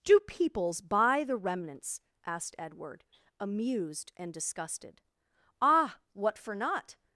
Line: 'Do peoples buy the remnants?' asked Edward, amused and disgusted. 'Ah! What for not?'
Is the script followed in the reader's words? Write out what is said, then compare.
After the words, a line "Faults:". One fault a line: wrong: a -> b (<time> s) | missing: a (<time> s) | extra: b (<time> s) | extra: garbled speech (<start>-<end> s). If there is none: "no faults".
'Do peoples buy the remnants?' asked Edward, amused and disgusted. 'Ah! What for not?'
Faults:
no faults